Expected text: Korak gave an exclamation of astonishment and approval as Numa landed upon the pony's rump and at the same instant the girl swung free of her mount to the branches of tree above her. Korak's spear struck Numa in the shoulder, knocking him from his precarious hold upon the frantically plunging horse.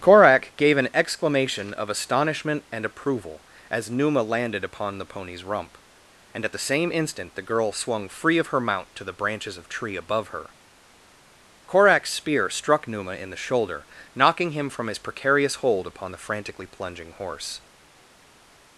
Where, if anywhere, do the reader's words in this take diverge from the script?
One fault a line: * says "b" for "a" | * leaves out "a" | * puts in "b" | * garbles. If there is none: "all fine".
all fine